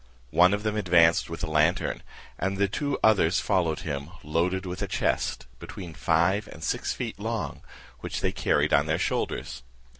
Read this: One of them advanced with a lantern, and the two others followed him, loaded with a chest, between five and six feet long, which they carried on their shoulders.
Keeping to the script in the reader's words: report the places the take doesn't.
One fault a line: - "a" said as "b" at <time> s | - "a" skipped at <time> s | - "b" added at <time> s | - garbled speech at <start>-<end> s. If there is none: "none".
none